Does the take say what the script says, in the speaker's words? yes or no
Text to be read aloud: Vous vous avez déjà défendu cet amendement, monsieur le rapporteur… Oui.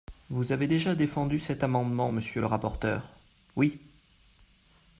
no